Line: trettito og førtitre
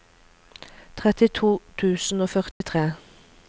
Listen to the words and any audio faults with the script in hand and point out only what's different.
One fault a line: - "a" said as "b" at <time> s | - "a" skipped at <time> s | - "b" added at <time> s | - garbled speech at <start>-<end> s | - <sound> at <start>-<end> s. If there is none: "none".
- "tusen" added at 1.8 s
- dropout at 2.5-2.6 s